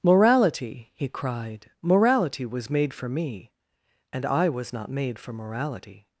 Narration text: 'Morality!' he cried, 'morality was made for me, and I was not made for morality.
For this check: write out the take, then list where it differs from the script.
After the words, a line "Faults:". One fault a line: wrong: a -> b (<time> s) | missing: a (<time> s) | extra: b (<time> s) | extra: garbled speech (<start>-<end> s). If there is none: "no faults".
'Morality!' he cried, 'morality was made for me, and I was not made for morality.
Faults:
no faults